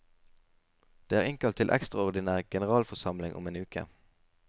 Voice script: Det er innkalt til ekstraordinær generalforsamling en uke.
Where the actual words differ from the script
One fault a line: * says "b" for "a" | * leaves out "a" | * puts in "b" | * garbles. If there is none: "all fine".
* puts in "om"